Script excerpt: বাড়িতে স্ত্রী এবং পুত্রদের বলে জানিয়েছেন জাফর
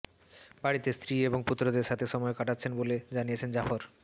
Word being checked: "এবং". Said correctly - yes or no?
yes